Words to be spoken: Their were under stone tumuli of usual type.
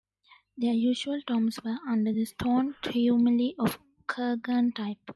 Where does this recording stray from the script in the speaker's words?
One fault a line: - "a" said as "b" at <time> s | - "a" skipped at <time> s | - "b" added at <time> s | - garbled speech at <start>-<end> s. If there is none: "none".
- "usual tombs" added at 0.7 s
- "the" added at 2.1 s
- "usual" said as "kurgan" at 4.1 s